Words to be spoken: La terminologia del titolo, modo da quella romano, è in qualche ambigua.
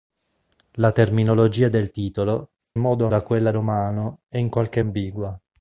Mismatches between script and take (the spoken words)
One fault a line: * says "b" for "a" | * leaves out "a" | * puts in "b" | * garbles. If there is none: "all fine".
all fine